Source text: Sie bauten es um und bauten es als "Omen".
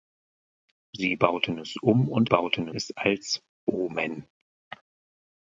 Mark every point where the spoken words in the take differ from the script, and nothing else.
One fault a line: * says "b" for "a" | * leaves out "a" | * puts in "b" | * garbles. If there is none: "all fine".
all fine